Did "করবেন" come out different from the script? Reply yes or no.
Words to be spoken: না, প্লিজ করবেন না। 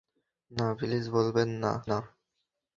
yes